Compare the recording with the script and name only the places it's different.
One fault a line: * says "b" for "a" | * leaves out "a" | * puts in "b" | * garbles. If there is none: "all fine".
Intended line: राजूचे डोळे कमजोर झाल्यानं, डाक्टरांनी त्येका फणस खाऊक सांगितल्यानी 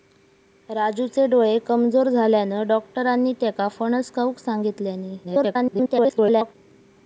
* garbles